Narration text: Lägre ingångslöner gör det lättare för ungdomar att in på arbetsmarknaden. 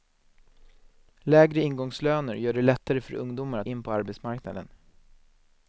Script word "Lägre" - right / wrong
right